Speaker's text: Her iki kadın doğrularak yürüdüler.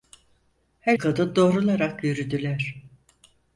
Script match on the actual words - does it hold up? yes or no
no